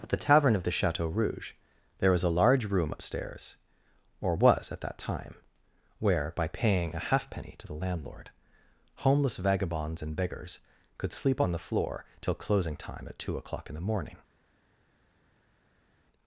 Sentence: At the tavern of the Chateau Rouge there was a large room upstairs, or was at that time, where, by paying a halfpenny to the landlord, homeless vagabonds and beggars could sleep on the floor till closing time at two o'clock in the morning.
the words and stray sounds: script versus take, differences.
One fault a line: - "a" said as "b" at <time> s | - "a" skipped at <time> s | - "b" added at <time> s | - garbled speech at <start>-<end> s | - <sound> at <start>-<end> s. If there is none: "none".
none